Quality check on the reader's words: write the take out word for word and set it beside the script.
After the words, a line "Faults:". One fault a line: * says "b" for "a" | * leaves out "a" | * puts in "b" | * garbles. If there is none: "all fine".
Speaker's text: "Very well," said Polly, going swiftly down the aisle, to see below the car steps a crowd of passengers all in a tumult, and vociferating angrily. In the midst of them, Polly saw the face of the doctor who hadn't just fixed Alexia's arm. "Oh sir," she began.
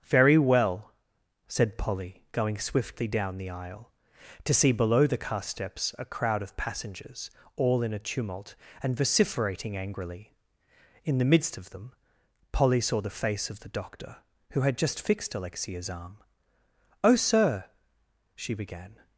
"Very well," said Polly, going swiftly down the aisle, to see below the car steps a crowd of passengers all in a tumult, and vociferating angrily. In the midst of them, Polly saw the face of the doctor who had just fixed Alexia's arm. "Oh sir," she began.
Faults:
* says "had" for "hadn't"